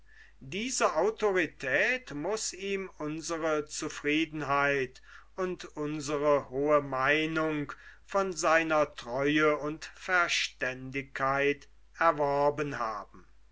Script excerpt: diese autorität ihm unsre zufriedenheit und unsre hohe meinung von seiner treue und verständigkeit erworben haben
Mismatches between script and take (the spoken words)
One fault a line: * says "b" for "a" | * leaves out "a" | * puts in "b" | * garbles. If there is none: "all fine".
* puts in "muß"